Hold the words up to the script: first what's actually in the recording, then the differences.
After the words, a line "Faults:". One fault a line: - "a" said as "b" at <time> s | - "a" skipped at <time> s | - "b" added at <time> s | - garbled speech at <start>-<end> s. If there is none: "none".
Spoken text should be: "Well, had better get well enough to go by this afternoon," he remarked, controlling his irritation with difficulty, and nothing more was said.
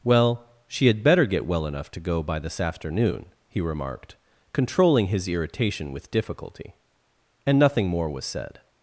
"Well, she had better get well enough to go by this afternoon," he remarked, controlling his irritation with difficulty, and nothing more was said.
Faults:
- "she" added at 0.7 s